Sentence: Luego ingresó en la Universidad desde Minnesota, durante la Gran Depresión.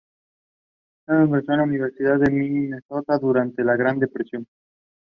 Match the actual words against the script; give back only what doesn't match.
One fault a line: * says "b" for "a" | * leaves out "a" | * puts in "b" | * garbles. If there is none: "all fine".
* says "de" for "desde"